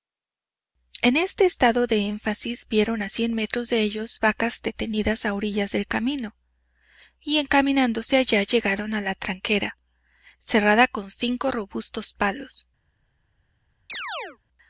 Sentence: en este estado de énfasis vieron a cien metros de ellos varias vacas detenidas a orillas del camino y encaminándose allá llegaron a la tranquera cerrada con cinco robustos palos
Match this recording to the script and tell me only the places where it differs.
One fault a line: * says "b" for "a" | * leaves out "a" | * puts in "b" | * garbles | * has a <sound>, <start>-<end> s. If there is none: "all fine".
* leaves out "varias"
* has a chirp, 13.9-14.4 s